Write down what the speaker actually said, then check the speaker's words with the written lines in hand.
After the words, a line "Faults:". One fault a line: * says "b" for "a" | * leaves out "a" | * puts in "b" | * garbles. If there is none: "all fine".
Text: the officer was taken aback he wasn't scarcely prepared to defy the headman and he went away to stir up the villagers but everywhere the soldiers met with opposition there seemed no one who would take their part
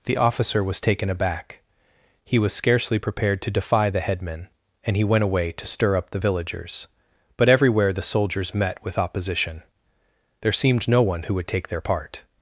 the officer was taken aback he was scarcely prepared to defy the headman and he went away to stir up the villagers but everywhere the soldiers met with opposition there seemed no one who would take their part
Faults:
* says "was" for "wasn't"